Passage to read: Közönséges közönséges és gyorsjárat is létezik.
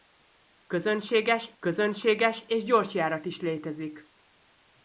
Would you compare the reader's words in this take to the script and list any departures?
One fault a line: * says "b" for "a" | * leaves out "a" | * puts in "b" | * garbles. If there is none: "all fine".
all fine